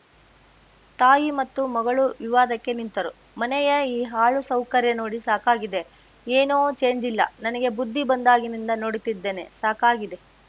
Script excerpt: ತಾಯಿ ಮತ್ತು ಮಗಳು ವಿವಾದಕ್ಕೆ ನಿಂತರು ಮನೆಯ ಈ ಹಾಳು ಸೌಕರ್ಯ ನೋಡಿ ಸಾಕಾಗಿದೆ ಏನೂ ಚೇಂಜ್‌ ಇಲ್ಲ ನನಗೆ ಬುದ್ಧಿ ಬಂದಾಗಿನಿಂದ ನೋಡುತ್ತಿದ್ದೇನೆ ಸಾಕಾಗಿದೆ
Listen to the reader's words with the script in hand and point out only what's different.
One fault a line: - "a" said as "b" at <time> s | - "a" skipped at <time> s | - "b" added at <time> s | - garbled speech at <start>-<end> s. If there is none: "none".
none